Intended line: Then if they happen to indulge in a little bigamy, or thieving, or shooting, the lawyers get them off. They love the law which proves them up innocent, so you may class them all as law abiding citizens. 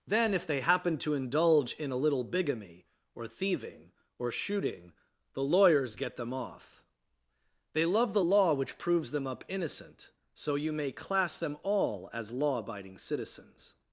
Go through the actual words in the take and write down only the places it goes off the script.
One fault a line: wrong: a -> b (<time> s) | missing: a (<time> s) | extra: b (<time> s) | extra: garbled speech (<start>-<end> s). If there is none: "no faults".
no faults